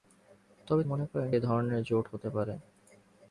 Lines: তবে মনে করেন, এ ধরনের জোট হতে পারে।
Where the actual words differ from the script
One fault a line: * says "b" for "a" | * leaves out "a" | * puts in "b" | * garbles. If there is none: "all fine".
all fine